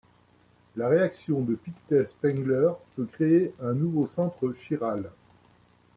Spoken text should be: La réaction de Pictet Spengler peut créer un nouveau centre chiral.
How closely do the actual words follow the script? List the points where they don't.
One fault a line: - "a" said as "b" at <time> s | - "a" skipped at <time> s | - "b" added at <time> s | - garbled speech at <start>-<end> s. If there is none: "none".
none